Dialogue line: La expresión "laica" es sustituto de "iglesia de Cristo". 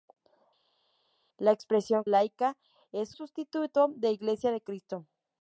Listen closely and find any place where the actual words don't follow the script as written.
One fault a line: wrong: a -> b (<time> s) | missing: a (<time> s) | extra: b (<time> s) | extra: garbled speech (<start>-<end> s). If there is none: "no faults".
no faults